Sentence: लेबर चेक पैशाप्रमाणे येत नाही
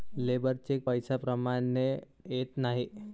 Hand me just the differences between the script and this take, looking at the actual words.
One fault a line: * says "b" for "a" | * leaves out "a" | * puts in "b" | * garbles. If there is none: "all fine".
all fine